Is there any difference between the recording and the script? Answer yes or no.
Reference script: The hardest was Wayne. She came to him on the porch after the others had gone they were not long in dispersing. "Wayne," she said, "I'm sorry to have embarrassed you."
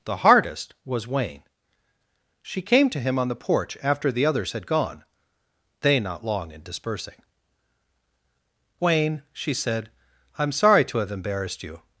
yes